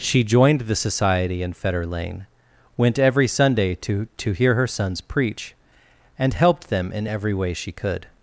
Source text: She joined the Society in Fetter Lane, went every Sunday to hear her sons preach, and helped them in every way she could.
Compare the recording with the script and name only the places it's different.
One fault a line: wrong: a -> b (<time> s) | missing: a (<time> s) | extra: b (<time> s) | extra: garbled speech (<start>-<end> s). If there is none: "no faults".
extra: to (4.2 s)